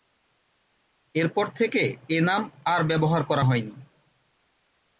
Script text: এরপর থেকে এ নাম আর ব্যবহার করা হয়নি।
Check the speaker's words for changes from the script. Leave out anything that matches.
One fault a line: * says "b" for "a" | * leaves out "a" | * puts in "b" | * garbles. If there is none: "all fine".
all fine